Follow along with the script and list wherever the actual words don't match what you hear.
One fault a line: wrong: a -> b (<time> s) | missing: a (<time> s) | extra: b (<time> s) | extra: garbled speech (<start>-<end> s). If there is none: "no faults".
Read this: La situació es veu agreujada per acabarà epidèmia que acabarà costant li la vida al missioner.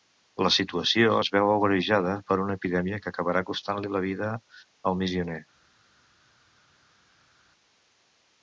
wrong: acabarà -> una (2.5 s)